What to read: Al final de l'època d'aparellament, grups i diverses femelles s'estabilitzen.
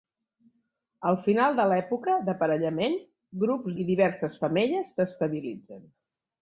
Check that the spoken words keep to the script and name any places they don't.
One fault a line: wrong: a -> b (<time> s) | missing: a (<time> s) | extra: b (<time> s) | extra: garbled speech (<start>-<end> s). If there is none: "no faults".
no faults